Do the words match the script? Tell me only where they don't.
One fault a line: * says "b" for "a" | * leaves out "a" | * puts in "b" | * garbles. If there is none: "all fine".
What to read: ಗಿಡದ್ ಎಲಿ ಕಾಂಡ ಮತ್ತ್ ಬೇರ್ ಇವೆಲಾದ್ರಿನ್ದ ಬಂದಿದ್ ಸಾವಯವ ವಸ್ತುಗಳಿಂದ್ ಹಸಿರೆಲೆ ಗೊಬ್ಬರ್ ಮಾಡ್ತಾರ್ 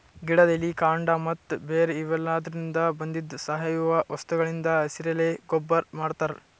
all fine